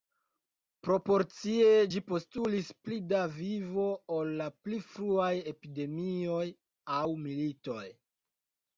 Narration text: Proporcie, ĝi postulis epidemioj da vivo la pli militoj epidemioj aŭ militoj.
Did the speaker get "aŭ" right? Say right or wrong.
right